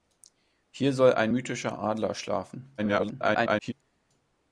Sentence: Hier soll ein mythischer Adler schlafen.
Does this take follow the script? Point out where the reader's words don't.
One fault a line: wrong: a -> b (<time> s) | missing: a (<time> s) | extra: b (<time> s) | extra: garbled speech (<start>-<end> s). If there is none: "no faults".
extra: garbled speech (2.8-3.7 s)